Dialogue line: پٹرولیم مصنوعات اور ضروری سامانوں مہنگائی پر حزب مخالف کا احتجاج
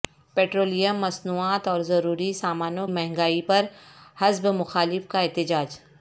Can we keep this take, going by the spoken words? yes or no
yes